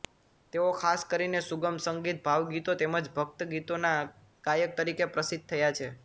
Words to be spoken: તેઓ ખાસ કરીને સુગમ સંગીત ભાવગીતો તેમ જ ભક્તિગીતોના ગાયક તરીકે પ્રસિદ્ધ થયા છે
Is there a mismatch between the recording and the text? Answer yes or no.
no